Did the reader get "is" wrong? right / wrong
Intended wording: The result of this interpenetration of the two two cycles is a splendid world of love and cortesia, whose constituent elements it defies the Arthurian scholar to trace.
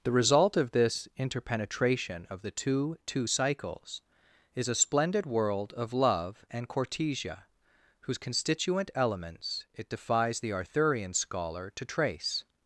right